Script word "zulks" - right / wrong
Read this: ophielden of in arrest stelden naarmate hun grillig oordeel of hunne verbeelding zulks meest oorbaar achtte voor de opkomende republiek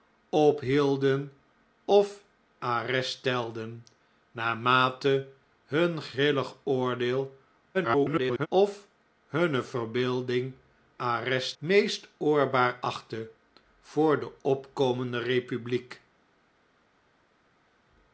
wrong